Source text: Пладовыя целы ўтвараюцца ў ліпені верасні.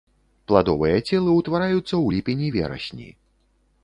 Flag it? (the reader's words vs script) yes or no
no